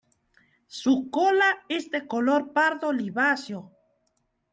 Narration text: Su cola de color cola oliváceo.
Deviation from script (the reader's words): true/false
true